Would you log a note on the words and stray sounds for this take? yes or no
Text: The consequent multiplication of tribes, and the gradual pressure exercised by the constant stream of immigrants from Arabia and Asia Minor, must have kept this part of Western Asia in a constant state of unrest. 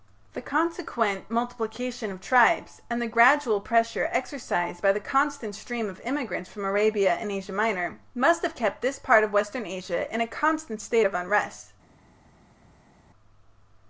no